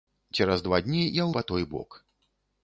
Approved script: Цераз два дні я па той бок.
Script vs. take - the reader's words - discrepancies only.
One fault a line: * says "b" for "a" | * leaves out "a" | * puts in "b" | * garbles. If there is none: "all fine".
all fine